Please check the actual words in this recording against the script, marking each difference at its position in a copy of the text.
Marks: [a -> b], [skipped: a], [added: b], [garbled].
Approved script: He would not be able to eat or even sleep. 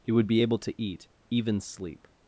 He would [skipped: not] be able to eat [skipped: or] even sleep.